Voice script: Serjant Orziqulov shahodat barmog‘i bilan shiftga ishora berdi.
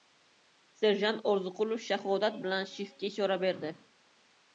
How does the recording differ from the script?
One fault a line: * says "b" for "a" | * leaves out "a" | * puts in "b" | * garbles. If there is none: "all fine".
* leaves out "barmog‘i"